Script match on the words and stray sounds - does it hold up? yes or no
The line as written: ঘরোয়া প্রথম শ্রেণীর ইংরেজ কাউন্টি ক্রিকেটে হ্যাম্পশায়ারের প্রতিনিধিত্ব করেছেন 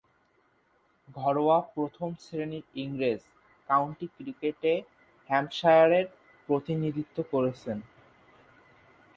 yes